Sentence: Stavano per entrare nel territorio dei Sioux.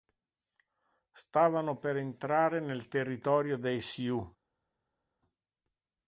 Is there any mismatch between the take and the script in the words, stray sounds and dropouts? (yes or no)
no